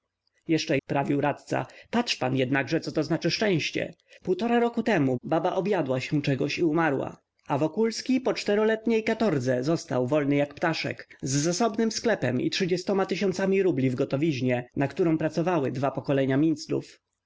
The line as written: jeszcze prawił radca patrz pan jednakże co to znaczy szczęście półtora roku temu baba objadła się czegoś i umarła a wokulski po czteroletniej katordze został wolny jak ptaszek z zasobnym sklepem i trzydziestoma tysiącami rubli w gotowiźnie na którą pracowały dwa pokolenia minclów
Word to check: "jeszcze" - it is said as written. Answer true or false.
true